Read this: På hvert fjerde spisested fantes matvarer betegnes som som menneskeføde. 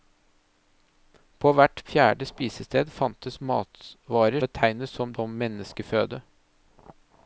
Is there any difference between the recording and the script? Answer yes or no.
no